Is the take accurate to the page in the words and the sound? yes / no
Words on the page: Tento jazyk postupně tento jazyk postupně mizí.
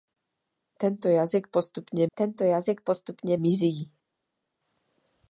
yes